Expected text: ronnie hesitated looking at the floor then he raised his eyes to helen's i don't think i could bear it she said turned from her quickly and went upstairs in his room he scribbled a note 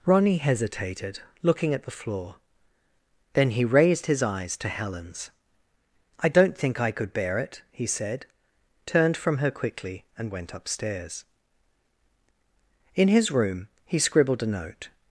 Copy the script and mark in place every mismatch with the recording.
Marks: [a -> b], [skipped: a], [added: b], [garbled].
ronnie hesitated looking at the floor then he raised his eyes to helen's i don't think i could bear it [she -> he] said turned from her quickly and went upstairs in his room he scribbled a note